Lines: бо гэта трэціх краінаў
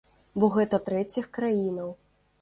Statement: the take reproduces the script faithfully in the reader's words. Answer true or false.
true